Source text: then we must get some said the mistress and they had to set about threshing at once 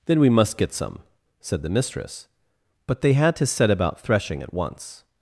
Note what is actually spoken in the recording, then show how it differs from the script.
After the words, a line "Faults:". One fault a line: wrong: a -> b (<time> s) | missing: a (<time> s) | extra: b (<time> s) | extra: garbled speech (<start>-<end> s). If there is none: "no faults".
then we must get some said the mistress but they had to set about threshing at once
Faults:
wrong: and -> but (2.9 s)